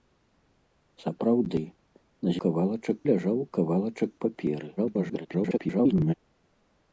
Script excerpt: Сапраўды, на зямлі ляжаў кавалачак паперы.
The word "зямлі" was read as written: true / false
false